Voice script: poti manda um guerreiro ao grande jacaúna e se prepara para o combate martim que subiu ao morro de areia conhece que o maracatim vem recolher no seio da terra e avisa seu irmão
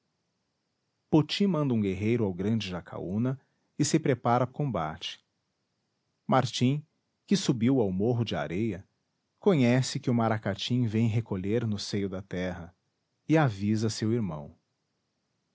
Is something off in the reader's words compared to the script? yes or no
yes